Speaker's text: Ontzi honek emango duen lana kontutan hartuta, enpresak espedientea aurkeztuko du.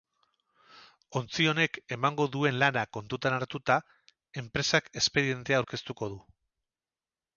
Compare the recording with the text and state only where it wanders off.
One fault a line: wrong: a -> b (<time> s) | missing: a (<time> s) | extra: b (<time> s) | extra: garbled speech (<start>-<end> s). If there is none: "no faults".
no faults